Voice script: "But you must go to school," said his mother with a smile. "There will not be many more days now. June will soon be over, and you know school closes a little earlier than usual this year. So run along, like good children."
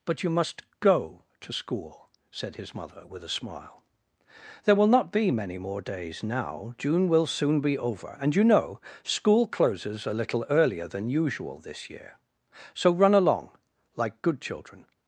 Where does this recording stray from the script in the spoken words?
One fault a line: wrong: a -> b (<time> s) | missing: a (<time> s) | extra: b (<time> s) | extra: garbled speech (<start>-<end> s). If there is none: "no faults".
no faults